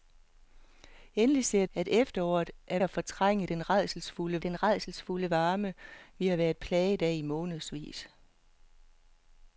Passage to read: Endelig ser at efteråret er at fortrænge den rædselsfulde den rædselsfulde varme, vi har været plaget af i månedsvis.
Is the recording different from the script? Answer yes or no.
no